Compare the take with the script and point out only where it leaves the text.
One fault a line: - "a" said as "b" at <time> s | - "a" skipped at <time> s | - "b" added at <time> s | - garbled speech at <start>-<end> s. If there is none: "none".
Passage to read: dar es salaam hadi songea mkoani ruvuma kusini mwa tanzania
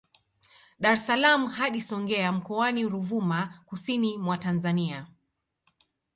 none